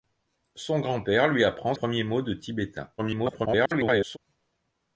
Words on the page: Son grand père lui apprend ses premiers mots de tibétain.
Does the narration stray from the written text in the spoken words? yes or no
yes